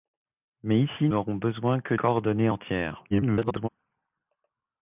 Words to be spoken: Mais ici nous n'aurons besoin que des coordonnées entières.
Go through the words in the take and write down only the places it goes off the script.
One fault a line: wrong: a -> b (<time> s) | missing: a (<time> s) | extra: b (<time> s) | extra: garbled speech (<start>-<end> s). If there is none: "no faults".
missing: nous (1.1 s)
missing: des (1.9 s)
extra: garbled speech (3.1-3.7 s)